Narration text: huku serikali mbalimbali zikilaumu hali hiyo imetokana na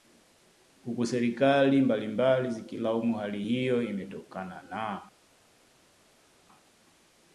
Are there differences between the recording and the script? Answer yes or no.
no